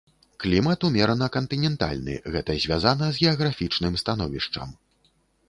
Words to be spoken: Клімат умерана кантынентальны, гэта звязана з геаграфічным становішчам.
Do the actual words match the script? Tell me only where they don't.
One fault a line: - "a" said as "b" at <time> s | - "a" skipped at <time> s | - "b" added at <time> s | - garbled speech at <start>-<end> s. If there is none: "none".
none